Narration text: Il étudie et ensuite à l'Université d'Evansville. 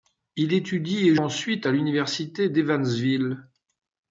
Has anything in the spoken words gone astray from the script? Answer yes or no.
no